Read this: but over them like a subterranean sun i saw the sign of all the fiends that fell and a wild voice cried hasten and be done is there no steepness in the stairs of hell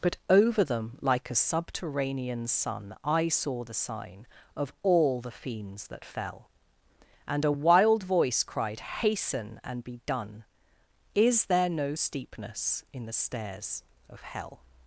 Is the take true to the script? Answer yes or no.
yes